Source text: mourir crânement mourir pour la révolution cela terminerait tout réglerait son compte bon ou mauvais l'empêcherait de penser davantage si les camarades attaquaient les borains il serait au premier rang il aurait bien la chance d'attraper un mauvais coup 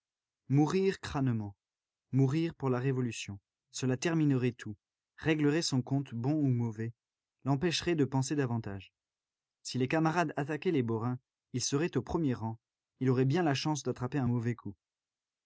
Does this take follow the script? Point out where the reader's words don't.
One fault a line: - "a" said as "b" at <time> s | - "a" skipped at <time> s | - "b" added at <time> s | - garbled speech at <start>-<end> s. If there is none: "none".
none